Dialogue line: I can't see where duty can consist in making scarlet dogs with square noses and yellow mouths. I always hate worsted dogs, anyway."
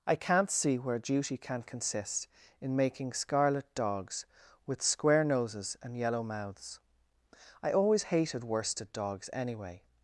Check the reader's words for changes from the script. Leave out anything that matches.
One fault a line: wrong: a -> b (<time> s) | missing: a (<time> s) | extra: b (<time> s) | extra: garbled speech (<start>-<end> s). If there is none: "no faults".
wrong: hate -> hated (8.0 s)